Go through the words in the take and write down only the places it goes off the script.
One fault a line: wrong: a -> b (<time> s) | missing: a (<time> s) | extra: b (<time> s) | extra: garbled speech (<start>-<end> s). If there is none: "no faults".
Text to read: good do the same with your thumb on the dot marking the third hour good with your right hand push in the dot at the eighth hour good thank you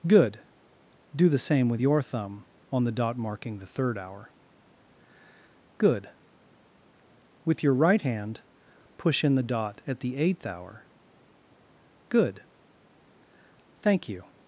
no faults